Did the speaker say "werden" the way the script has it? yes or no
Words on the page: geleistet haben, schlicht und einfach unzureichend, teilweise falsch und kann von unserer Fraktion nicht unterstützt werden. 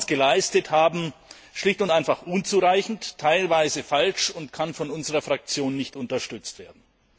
yes